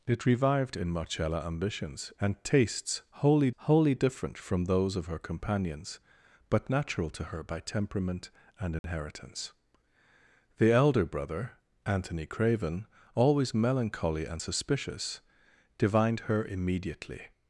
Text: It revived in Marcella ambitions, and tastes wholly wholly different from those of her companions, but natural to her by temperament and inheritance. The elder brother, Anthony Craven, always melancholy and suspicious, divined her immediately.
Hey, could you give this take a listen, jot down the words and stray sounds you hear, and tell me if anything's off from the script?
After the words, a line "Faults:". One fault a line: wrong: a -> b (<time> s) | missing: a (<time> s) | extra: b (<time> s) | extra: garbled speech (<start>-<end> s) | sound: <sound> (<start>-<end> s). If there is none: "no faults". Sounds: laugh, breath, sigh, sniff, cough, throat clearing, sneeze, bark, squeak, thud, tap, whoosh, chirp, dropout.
It revived in Marcella ambitions, and tastes wholly wholly different from those of her companions, but natural to her by temperament and inheritance. The elder brother, Anthony Craven, always melancholy and suspicious, divined her immediately.
Faults:
sound: dropout (8.8-8.8 s)